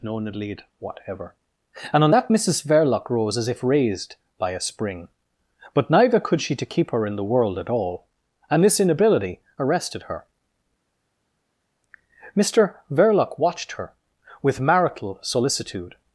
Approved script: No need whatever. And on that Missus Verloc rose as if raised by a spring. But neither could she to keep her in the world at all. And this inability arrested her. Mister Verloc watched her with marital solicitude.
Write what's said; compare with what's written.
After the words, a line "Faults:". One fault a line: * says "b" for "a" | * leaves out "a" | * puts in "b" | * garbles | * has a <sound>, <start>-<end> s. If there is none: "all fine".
No need whatever. And on that Missus Verloc rose as if raised by a spring. But neither could she to keep her in the world at all. And this inability arrested her. Mister Verloc watched her with marital solicitude.
Faults:
all fine